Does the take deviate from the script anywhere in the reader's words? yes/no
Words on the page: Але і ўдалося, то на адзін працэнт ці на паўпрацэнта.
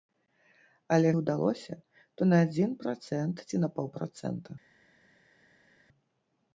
no